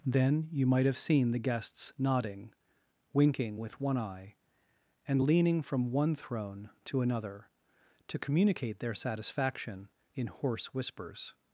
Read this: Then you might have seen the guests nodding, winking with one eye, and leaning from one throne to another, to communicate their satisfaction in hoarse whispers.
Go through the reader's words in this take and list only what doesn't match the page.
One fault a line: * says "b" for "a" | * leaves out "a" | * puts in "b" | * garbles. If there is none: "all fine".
all fine